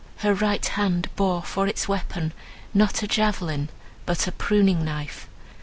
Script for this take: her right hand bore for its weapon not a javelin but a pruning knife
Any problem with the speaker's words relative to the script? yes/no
no